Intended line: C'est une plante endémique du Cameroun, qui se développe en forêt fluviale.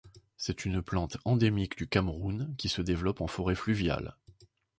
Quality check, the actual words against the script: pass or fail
pass